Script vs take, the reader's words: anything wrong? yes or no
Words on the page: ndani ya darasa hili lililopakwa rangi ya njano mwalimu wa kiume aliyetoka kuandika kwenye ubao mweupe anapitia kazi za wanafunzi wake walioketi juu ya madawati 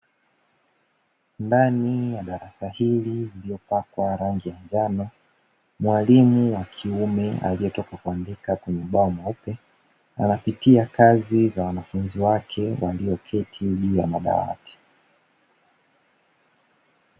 no